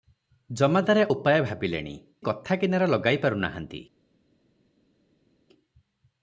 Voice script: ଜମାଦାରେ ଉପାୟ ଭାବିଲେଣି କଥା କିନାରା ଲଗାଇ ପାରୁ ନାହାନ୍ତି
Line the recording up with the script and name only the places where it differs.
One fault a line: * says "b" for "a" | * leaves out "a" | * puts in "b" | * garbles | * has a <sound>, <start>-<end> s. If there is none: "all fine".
all fine